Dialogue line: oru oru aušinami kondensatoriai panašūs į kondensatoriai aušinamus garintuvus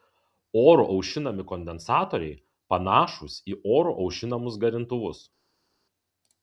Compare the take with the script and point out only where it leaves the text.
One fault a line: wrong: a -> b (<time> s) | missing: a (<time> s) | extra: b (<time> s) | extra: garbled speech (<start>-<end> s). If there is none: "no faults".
missing: oru (0.8 s)
wrong: kondensatoriai -> oru (3.8 s)